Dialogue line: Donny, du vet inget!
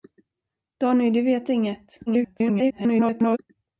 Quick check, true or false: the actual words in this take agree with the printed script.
false